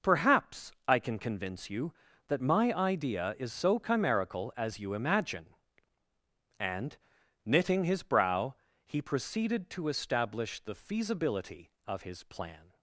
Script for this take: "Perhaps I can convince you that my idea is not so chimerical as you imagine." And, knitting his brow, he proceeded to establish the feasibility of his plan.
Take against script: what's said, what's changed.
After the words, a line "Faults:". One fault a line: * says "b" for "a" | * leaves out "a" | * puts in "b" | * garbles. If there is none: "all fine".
"Perhaps I can convince you that my idea is so chimerical as you imagine." And, knitting his brow, he proceeded to establish the feasibility of his plan.
Faults:
* leaves out "not"